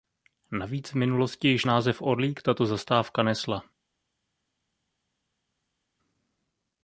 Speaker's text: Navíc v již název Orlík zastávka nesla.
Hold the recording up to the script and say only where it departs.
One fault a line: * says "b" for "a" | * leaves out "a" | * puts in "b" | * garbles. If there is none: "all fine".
* puts in "minulosti"
* puts in "tato"